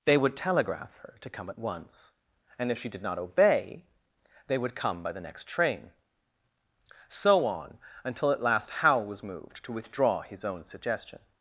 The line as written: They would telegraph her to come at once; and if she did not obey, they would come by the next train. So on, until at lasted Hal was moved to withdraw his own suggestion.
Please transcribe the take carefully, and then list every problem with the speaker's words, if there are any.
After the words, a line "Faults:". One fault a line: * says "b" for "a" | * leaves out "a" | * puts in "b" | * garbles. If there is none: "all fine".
They would telegraph her to come at once; and if she did not obey, they would come by the next train. So on, until at last Hal was moved to withdraw his own suggestion.
Faults:
* says "last" for "lasted"